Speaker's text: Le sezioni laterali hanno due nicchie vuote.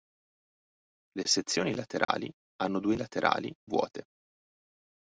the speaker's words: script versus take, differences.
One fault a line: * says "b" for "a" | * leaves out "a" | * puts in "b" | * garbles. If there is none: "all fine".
* says "laterali" for "nicchie"